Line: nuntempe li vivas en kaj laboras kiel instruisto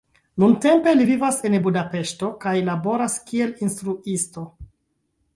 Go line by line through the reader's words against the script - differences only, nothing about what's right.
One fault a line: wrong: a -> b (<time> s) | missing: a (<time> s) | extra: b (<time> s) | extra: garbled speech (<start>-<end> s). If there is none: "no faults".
extra: budapeŝto (1.7 s)